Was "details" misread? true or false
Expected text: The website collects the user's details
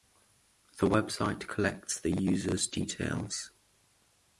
false